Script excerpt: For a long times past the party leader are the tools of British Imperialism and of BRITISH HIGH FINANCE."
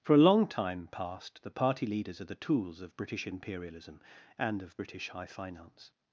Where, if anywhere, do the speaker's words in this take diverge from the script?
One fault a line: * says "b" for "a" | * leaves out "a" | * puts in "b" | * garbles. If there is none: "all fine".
* says "time" for "times"
* says "leaders" for "leader"